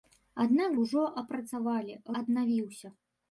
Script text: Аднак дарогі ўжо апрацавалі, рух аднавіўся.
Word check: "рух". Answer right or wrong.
wrong